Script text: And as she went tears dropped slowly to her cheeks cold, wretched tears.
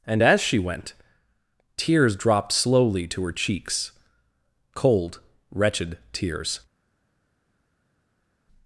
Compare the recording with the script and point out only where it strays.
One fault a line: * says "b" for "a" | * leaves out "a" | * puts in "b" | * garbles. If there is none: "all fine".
all fine